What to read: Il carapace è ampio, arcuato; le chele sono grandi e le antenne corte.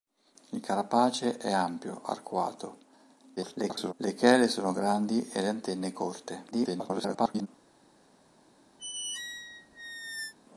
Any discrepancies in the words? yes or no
yes